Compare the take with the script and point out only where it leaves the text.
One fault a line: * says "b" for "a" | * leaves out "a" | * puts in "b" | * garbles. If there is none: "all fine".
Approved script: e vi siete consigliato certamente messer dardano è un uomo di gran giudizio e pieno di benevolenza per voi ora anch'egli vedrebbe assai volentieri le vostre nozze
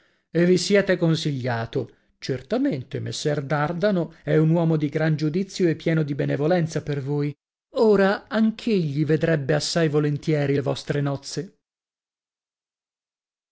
all fine